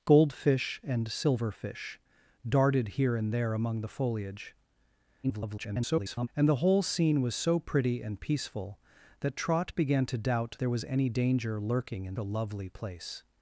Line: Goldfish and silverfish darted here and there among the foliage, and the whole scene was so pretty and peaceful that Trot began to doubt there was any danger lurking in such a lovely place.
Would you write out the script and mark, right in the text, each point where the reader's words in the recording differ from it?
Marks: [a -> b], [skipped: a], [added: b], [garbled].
Goldfish and silverfish darted here and there among the foliage, [garbled] and the whole scene was so pretty and peaceful that Trot began to doubt there was any danger lurking in [skipped: such] a lovely place.